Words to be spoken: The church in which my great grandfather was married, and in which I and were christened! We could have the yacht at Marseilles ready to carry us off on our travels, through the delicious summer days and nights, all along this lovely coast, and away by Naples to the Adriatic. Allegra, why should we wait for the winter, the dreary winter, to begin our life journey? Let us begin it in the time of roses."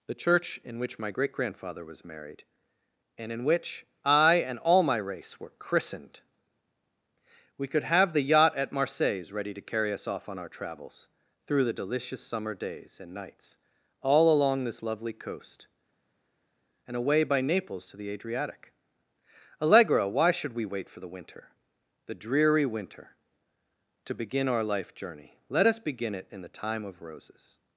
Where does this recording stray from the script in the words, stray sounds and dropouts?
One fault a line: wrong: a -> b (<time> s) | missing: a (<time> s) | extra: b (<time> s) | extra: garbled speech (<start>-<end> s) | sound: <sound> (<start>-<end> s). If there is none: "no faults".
extra: all my race (4.6 s)